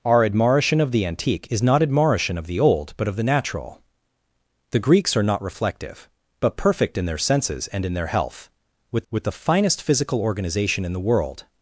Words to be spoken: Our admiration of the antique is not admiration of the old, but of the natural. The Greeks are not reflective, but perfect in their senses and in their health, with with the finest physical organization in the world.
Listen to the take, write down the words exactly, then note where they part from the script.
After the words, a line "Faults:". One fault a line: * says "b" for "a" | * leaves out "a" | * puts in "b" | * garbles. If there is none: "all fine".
Our admiration of the antique is not admiration of the old, but of the natural. The Greeks are not reflective, but perfect in their senses and in their health, with with the finest physical organization in the world.
Faults:
all fine